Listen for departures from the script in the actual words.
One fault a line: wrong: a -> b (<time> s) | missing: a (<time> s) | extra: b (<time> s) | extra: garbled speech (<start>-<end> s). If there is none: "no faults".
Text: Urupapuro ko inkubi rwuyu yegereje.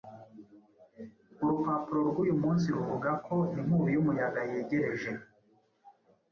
extra: rwuyu munsi ruvuga (2.1 s)
wrong: rwuyu -> y'umuyaga (4.0 s)